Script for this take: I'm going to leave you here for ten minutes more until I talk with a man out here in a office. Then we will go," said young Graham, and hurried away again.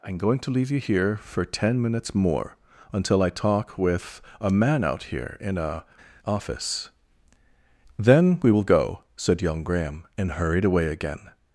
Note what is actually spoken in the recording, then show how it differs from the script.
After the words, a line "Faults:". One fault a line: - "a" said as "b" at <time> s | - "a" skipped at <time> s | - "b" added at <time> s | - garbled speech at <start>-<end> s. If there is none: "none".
I'm going to leave you here for ten minutes more until I talk with a man out here in a office. Then we will go," said young Graham, and hurried away again.
Faults:
none